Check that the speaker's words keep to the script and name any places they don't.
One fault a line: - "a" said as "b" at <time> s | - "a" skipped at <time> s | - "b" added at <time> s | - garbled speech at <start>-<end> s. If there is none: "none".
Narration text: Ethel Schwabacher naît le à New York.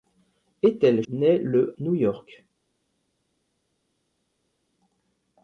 - "Schwabacher" skipped at 1.0 s
- "à" skipped at 1.7 s